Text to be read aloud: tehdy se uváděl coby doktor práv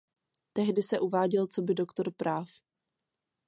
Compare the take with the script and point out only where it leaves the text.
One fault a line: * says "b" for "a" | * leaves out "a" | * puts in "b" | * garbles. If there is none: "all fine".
all fine